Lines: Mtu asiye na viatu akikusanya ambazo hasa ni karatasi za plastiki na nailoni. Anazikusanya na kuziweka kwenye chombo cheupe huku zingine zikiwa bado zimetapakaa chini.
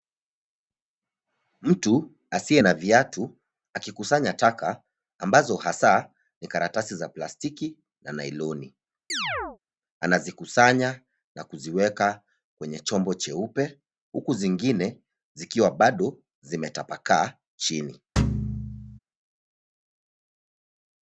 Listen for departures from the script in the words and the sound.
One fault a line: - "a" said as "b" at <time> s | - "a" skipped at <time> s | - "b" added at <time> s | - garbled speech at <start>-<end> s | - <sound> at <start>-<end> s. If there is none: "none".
- "taka" added at 4.3 s
- chirp at 9.1-9.6 s
- thud at 18.2-19.0 s